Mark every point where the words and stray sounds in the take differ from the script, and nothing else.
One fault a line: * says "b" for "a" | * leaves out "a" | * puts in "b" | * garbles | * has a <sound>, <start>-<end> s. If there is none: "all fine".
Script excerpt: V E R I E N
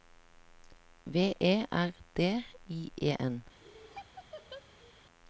* puts in "D"
* has a laugh, 3.6-5.0 s